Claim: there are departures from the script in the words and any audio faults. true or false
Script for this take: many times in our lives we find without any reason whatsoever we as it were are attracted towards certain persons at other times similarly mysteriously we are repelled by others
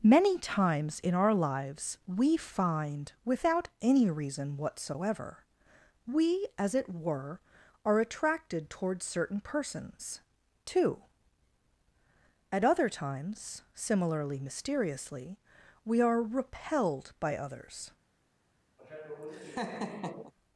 true